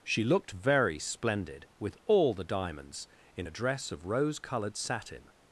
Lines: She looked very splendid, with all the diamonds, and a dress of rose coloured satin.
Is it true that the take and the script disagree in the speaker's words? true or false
true